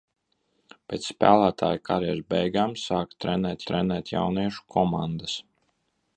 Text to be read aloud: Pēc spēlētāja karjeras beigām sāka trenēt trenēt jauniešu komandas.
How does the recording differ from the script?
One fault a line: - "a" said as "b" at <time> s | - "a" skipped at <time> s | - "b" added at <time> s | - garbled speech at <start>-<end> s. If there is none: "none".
none